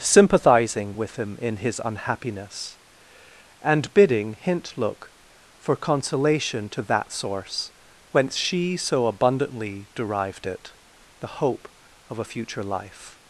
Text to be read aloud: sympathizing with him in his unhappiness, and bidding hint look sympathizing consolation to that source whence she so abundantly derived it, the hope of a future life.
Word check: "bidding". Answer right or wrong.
right